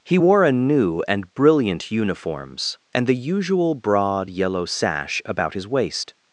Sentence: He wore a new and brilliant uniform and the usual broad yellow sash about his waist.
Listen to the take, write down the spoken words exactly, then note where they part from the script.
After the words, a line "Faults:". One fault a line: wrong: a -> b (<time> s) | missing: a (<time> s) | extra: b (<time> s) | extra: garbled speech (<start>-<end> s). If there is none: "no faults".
He wore a new and brilliant uniforms and the usual broad yellow sash about his waist.
Faults:
wrong: uniform -> uniforms (1.9 s)